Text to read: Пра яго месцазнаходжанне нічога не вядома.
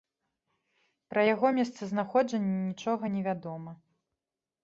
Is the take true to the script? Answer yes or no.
yes